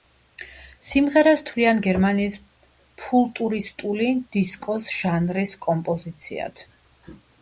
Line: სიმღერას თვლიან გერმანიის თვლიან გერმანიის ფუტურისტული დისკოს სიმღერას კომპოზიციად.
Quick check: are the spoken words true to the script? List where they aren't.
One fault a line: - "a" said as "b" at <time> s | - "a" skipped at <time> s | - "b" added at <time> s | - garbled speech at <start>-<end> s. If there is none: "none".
- "თვლიან გერმანიის" skipped at 2.4 s
- "სიმღერას" said as "ჟანრის" at 5.0 s